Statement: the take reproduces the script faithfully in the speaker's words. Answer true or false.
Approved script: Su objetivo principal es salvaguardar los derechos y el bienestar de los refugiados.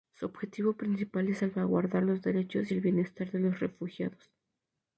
true